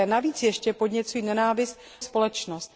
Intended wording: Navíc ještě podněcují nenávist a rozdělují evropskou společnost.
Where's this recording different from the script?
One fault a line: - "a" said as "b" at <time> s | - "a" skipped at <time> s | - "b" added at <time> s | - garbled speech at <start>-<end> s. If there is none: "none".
- "a rozdělují evropskou" skipped at 1.8 s